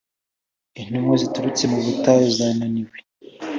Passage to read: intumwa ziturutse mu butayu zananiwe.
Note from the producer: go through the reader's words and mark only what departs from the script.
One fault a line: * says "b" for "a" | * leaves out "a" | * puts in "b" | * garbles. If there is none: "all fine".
all fine